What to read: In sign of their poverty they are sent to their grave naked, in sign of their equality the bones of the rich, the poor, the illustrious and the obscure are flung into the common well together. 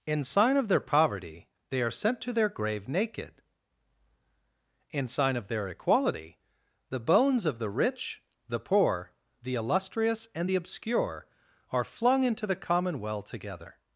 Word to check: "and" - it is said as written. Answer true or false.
true